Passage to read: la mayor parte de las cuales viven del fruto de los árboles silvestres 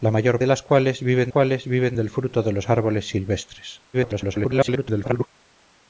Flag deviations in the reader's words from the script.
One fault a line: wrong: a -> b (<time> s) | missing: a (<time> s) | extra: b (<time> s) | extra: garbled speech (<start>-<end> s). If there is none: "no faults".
missing: parte (0.4 s)
extra: cuales viven (1.3 s)
extra: garbled speech (3.9-5.3 s)